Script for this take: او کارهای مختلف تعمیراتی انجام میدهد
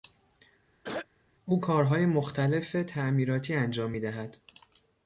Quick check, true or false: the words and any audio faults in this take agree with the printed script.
false